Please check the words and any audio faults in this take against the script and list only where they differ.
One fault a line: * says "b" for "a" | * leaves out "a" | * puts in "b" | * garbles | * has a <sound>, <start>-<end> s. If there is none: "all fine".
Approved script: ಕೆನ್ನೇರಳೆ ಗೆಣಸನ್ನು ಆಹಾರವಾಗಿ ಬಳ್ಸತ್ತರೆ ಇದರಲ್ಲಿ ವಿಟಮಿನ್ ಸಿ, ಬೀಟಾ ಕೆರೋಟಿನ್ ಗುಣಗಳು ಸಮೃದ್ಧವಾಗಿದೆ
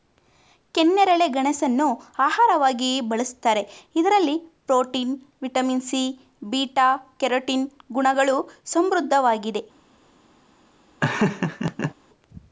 * puts in "ಪ್ರೋಟೀನ್"
* has a laugh, 11.0-11.9 s